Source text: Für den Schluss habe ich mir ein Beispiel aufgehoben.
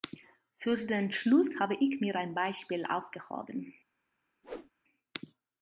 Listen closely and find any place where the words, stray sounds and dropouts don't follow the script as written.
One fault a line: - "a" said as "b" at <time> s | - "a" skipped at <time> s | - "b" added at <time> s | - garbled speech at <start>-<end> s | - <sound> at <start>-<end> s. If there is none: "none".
- whoosh at 4.4-4.7 s